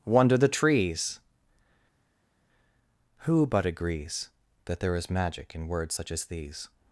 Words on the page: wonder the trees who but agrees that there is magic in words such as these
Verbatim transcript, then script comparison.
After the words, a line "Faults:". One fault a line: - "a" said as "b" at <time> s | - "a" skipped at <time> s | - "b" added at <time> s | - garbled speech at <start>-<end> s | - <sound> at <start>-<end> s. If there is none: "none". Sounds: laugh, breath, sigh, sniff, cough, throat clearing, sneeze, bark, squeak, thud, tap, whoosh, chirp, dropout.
wonder the trees who but agrees that there is magic in words such as these
Faults:
none